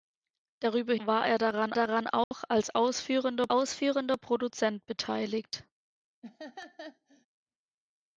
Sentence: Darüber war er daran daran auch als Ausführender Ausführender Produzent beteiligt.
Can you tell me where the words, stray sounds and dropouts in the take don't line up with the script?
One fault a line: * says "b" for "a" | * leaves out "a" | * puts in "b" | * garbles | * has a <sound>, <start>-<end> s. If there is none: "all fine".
* has a dropout, 2.2-2.3 s
* has a laugh, 6.2-7.3 s